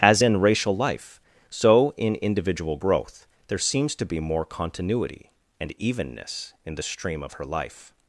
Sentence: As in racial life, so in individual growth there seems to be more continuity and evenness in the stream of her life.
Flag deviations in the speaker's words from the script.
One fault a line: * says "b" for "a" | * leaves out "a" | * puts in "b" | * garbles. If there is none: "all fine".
all fine